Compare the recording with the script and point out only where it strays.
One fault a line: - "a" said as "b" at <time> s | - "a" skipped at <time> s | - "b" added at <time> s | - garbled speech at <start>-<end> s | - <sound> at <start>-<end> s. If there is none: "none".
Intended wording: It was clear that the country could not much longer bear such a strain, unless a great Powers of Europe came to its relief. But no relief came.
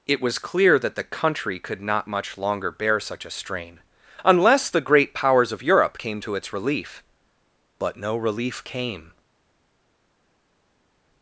- "a" said as "the" at 4.7 s